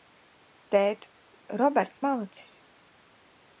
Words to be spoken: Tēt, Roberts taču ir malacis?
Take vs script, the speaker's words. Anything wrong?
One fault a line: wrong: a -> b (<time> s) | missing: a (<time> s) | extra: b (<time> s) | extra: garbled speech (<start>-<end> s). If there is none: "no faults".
missing: taču ir (2.0 s)